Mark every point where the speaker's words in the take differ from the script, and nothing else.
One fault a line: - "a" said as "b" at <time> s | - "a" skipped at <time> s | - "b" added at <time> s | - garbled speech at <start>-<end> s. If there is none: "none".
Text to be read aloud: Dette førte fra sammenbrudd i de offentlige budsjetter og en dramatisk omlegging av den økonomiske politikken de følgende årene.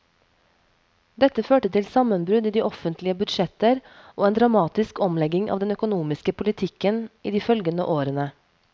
- "fra" said as "til" at 1.8 s
- "i" added at 7.2 s